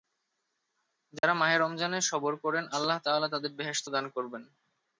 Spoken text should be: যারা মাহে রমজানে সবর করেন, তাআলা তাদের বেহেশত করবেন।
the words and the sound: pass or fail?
fail